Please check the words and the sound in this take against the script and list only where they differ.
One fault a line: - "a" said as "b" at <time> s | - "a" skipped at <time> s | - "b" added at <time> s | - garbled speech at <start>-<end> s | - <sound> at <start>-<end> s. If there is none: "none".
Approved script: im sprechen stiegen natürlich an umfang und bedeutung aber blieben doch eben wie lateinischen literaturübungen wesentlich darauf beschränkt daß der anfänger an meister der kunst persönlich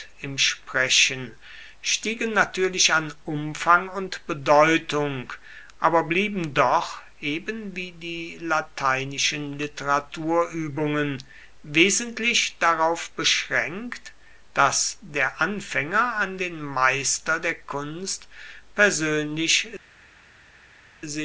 - "die" added at 7.9 s
- "den" added at 16.4 s